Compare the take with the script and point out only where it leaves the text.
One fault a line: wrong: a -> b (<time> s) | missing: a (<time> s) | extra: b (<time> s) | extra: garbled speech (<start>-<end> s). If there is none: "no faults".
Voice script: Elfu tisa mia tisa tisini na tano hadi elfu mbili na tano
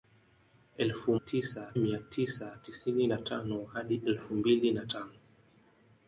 no faults